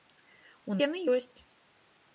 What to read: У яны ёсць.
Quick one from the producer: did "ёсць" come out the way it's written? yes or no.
yes